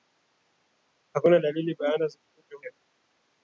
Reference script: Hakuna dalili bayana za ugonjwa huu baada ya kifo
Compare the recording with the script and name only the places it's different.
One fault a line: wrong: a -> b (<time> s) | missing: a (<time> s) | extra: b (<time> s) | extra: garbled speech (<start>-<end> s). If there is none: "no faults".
missing: huu baada (2.6 s)